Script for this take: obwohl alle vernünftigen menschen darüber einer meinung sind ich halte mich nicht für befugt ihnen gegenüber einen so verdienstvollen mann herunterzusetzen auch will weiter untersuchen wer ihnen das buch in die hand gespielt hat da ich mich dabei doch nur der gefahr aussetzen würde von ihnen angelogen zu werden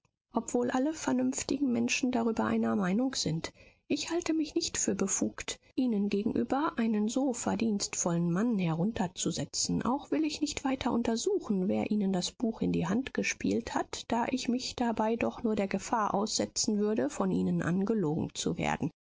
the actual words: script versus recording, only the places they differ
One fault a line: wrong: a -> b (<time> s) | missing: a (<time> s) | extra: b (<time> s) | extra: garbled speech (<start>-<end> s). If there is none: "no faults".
extra: ich nicht (10.2 s)